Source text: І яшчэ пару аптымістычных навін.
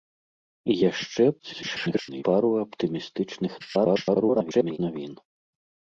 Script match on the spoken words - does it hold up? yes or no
no